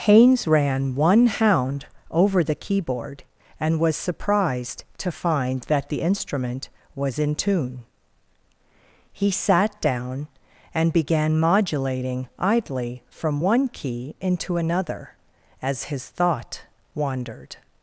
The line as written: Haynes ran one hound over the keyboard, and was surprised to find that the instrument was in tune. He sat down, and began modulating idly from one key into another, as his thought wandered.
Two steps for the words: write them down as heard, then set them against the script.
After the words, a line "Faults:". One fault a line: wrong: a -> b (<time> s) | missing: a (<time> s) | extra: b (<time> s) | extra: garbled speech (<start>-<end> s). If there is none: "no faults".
Haynes ran one hound over the keyboard, and was surprised to find that the instrument was in tune. He sat down, and began modulating idly from one key into another, as his thought wandered.
Faults:
no faults